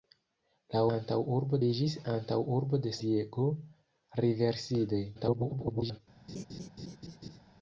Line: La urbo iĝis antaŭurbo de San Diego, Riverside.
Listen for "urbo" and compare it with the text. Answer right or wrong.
wrong